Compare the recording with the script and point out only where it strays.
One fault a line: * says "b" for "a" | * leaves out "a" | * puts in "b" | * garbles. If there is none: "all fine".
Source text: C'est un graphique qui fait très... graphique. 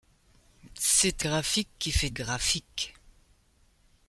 * leaves out "un"
* leaves out "très"